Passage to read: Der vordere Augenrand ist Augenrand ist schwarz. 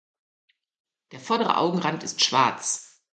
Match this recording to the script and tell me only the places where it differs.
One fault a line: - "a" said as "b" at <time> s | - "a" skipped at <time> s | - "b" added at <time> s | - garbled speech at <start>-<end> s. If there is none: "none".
- "Augenrand ist" skipped at 2.2 s